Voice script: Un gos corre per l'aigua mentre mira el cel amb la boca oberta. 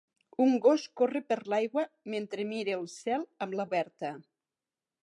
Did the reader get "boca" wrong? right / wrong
wrong